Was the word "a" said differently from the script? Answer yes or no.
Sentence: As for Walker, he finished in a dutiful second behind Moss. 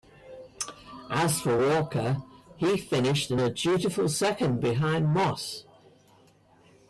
no